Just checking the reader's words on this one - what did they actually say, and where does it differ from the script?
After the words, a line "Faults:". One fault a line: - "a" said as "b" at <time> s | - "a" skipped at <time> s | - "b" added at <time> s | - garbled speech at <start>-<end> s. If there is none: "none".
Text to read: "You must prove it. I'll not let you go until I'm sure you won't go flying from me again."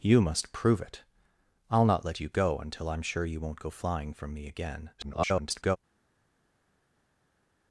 "You must prove it. I'll not let you go until I'm sure you won't go flying from me again." [garbled]
Faults:
- garbled speech at 5.0-5.8 s